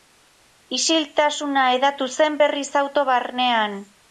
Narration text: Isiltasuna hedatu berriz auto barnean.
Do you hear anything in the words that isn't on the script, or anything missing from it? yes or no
yes